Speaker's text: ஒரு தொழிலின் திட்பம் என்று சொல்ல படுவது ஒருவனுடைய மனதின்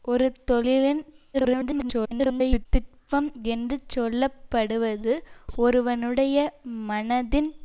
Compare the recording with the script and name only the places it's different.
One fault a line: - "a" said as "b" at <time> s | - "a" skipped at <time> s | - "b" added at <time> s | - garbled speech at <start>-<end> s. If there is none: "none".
- garbled speech at 1.3-2.7 s